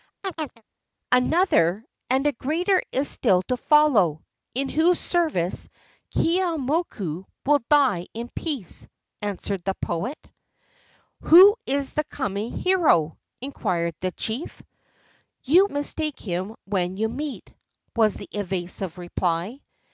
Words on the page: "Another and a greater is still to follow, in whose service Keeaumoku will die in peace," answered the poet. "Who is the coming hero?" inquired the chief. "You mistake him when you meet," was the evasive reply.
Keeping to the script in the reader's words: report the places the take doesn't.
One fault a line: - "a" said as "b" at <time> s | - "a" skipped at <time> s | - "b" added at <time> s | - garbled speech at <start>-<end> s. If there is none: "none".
none